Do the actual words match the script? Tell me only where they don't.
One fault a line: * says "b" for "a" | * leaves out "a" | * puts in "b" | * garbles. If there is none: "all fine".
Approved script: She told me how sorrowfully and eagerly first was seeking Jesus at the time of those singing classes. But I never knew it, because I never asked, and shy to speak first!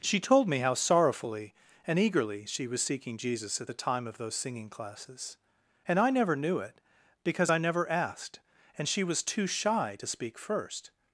* says "she" for "first"
* says "And" for "But"
* puts in "she was too"